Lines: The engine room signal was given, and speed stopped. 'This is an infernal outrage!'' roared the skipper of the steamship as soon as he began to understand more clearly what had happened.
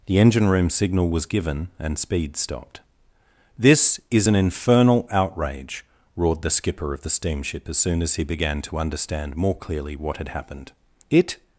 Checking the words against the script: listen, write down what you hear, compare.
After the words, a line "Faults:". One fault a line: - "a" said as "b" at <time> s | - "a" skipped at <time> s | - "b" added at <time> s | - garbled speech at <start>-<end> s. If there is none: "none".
The engine room signal was given, and speed stopped. 'This is an infernal outrage!'' roared the skipper of the steamship as soon as he began to understand more clearly what had happened. 'It
Faults:
- "It" added at 11.1 s